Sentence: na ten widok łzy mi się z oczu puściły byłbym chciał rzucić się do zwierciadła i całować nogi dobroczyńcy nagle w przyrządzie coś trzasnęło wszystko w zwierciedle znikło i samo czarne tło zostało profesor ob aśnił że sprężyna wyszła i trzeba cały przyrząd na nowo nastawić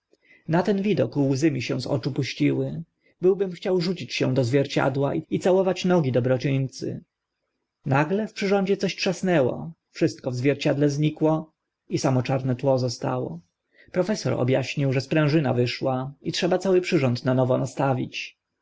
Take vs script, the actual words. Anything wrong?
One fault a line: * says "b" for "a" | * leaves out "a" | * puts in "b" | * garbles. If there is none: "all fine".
all fine